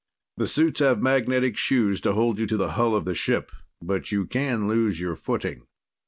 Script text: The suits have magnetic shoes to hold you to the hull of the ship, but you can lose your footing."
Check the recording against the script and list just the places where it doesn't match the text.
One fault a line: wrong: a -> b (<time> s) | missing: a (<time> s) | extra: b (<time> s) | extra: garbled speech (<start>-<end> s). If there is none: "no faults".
no faults